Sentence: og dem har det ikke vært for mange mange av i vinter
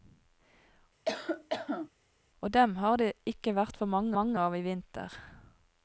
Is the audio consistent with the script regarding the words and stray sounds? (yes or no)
no